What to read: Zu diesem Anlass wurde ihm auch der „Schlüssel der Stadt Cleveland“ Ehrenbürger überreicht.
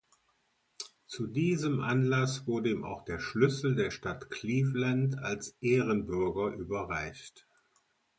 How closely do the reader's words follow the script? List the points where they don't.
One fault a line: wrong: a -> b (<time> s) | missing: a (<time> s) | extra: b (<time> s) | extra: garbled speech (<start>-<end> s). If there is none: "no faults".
extra: als (5.2 s)